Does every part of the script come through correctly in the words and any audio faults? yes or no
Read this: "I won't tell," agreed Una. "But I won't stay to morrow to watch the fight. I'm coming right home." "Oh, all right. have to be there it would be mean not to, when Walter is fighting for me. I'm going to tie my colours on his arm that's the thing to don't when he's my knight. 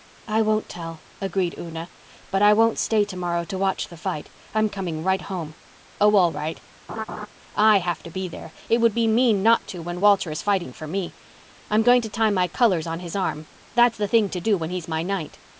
no